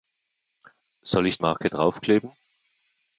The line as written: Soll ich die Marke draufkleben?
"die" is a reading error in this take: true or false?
true